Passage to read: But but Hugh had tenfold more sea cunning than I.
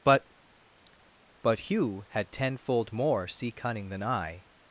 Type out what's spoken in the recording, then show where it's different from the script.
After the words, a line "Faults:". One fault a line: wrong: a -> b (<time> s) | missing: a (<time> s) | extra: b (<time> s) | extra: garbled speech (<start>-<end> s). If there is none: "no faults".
But but Hugh had tenfold more sea cunning than I.
Faults:
no faults